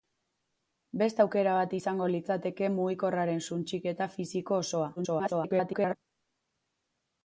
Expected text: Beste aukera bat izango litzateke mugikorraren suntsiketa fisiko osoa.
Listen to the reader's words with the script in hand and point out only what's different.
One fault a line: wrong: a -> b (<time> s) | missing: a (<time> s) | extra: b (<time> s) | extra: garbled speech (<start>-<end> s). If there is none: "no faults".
extra: garbled speech (5.0-6.0 s)